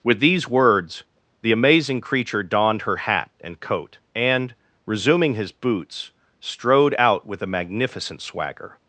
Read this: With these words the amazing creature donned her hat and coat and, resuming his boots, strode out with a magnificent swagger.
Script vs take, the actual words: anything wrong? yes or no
no